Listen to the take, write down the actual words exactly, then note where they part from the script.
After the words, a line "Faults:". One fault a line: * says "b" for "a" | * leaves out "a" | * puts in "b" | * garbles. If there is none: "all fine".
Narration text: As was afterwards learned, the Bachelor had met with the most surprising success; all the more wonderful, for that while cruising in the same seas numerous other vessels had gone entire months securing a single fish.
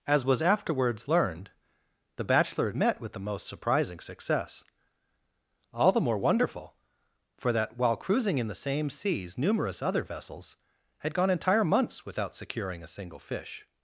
As was afterwards learned, the Bachelor had met with the most surprising success; all the more wonderful, for that while cruising in the same seas numerous other vessels had gone entire months without securing a single fish.
Faults:
* puts in "without"